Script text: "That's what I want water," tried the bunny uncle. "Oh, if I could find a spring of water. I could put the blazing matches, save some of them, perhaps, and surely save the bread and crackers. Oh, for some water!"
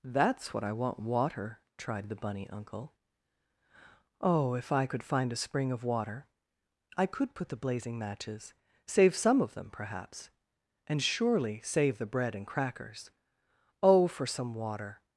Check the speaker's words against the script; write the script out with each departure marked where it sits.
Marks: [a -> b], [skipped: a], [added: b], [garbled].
"That's what I want water," tried the bunny uncle. "Oh, if I could find a spring of water. I could put the blazing matches, save some of them, perhaps, and surely save the bread and crackers. Oh, for some water!"